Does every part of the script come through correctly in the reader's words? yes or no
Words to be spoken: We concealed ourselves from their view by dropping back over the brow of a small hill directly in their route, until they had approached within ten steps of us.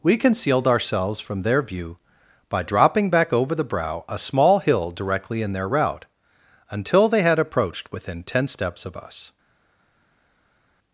no